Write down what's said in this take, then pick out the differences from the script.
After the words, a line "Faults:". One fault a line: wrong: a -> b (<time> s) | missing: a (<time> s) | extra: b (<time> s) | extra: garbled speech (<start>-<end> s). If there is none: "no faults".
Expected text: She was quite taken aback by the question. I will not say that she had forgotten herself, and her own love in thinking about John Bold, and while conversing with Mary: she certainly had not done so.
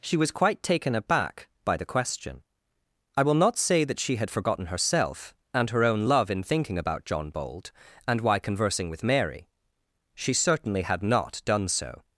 She was quite taken aback by the question. I will not say that she had forgotten herself, and her own love in thinking about John Bold, and why conversing with Mary: she certainly had not done so.
Faults:
wrong: while -> why (8.2 s)